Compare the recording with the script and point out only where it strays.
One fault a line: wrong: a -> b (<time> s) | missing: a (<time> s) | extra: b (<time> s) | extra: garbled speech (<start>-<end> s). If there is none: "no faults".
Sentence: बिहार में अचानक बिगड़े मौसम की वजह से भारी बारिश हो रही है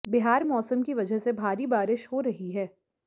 missing: में अचानक बिगड़े (0.4 s)